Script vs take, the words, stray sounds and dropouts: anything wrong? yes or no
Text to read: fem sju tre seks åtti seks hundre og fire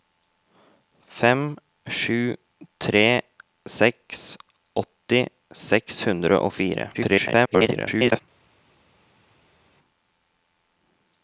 yes